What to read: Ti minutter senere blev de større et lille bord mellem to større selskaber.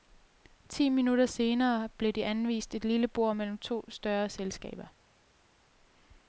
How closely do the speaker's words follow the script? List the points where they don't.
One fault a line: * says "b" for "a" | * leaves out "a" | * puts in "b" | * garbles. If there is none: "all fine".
* says "anvist" for "større"